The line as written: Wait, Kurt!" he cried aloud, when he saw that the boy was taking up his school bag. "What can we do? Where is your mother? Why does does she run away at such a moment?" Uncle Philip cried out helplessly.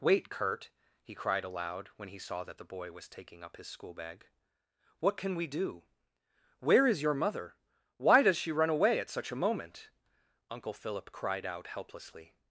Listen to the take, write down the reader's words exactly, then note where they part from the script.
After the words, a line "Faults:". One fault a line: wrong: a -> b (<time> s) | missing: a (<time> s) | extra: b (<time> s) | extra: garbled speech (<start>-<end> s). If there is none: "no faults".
Wait, Kurt!" he cried aloud, when he saw that the boy was taking up his school bag. "What can we do? Where is your mother? Why does she run away at such a moment?" Uncle Philip cried out helplessly.
Faults:
missing: does (8.4 s)